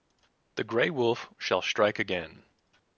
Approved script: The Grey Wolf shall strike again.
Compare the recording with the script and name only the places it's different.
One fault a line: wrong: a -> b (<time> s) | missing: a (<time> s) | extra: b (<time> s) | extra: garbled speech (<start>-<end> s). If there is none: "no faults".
no faults